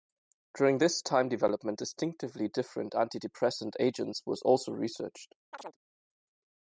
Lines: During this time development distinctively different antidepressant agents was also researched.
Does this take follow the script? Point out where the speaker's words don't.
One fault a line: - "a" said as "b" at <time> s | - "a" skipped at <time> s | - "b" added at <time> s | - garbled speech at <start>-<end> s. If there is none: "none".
none